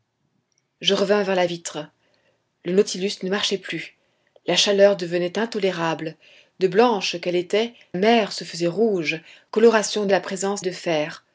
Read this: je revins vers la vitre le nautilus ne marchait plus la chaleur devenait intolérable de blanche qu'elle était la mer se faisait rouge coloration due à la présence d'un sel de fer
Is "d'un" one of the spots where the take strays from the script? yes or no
yes